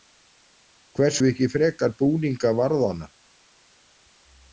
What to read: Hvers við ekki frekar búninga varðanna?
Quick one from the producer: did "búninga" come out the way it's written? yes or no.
yes